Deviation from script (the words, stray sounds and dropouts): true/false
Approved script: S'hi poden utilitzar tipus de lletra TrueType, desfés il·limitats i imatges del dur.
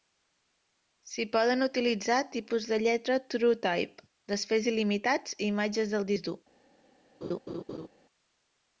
true